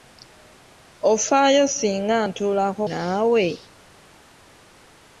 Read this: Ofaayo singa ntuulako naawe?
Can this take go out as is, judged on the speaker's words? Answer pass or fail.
pass